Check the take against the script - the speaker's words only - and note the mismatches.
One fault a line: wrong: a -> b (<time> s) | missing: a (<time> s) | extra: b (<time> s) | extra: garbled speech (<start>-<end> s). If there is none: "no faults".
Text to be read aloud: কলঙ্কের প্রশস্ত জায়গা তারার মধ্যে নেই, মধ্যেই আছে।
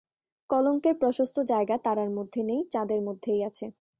extra: চাঁদের (2.7 s)